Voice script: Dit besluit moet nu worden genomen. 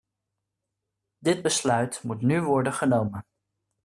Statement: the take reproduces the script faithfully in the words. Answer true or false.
true